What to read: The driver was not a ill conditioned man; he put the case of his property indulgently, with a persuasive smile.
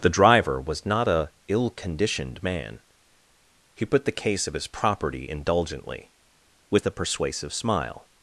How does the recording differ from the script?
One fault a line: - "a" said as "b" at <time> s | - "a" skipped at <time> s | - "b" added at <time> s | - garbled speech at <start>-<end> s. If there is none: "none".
none